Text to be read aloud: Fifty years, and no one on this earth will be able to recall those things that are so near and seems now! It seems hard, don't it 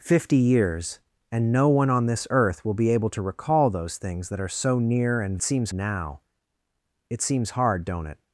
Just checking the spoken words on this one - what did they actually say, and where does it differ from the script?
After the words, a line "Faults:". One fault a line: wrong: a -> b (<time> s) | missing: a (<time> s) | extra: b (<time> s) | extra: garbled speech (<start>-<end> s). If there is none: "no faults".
Fifty years, and no one on this earth will be able to recall those things that are so near and seems now! It seems hard, don't it
Faults:
no faults